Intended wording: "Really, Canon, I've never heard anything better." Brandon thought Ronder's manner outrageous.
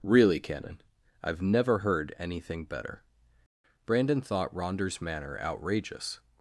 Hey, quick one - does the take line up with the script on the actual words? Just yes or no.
yes